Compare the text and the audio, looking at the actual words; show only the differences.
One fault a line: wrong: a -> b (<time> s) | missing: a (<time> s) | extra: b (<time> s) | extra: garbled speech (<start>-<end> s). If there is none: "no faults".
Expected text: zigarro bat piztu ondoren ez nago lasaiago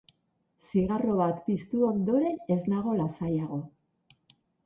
no faults